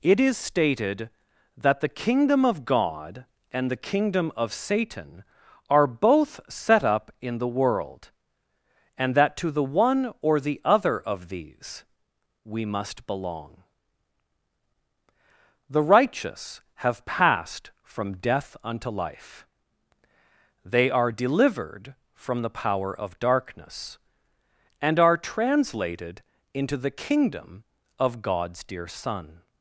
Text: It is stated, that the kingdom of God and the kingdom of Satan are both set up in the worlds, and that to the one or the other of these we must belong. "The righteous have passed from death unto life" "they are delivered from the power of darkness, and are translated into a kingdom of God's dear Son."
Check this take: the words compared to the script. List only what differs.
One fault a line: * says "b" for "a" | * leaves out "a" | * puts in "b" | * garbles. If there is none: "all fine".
* says "world" for "worlds"
* says "the" for "a"